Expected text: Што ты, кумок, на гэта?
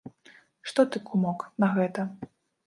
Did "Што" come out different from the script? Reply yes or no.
no